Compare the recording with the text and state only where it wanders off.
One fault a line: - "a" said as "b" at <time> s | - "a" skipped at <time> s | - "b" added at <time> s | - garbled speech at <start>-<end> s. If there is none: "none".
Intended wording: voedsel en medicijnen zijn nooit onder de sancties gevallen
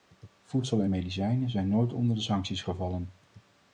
none